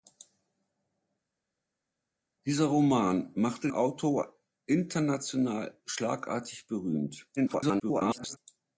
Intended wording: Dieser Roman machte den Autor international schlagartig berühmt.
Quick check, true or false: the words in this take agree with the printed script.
false